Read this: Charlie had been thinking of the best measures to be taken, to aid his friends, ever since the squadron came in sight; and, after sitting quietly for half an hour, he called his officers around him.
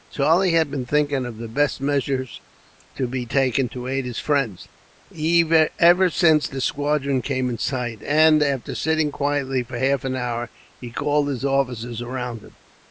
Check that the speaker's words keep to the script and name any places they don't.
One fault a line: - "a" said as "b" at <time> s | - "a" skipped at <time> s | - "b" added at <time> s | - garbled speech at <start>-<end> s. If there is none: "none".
none